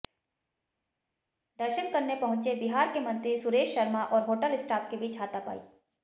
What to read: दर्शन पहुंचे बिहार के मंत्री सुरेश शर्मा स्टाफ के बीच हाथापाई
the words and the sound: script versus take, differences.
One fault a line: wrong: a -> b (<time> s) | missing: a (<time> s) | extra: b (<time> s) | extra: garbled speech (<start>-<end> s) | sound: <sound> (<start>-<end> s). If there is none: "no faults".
extra: करने (1.9 s)
extra: और होटल (4.0 s)